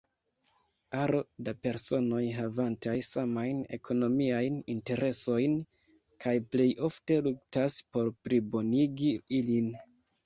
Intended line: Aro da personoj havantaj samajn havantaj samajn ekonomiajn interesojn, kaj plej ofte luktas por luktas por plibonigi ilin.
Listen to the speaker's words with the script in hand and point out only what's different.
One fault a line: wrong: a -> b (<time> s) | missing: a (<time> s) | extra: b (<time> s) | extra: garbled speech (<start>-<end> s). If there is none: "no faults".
missing: havantaj samajn (3.6 s)
missing: luktas por (8.1 s)